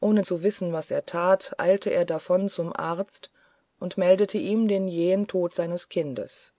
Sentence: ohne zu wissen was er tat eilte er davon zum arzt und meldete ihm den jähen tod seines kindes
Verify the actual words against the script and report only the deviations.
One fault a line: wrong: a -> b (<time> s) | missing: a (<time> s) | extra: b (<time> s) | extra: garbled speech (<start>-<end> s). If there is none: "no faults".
no faults